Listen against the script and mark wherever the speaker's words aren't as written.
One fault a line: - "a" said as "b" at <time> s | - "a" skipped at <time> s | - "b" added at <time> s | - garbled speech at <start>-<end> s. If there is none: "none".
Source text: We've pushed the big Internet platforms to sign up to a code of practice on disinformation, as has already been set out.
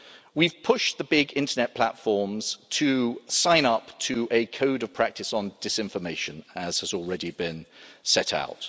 none